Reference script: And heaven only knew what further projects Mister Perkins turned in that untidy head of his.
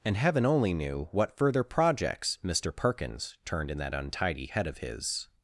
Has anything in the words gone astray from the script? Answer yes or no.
no